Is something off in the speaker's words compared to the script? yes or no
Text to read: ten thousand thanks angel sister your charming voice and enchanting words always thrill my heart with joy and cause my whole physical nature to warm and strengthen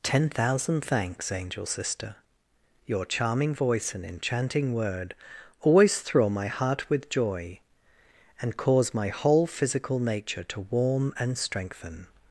yes